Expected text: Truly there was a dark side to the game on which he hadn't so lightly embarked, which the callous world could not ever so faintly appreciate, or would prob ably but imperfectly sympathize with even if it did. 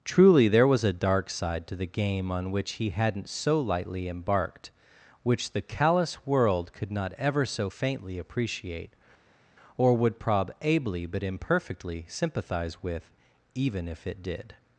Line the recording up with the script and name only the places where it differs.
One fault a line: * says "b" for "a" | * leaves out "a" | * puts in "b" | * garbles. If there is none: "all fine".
all fine